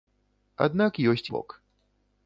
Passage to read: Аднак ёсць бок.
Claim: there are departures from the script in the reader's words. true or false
false